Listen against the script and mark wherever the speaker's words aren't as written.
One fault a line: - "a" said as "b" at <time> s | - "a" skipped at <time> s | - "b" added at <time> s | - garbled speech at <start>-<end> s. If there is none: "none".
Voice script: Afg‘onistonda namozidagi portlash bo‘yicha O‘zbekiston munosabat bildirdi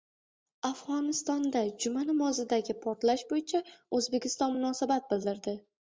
- "juma" added at 1.8 s